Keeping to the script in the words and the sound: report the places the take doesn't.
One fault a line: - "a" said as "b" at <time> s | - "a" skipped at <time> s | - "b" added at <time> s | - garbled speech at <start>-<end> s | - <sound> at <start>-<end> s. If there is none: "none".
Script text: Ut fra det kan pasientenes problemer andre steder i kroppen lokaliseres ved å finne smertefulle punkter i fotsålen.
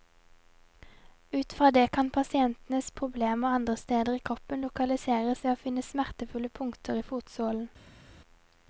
none